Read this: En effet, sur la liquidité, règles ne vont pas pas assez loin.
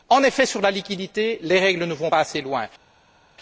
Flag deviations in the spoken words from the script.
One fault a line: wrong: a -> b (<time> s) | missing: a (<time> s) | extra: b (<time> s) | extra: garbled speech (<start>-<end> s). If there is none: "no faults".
extra: les (1.4 s)
missing: pas (2.2 s)